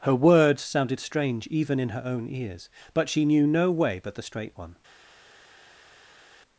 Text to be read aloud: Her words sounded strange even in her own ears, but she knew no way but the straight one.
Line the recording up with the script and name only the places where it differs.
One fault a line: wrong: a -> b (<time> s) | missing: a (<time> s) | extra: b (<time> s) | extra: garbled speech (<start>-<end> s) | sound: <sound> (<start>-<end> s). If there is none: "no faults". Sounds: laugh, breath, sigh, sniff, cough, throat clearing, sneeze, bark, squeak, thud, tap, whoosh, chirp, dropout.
no faults